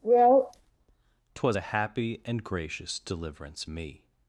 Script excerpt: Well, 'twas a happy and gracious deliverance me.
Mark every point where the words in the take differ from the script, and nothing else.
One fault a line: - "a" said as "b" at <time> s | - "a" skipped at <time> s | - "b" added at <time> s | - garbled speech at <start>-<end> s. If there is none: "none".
none